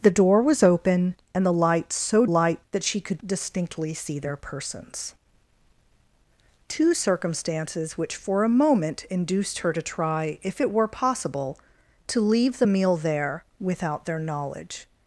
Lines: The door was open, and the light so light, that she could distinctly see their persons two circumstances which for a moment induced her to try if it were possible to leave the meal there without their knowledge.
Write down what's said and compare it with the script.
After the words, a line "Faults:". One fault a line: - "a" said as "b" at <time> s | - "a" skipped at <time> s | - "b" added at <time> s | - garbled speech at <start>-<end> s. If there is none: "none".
The door was open, and the light so light, that she could distinctly see their persons two circumstances which for a moment induced her to try if it were possible to leave the meal there without their knowledge.
Faults:
none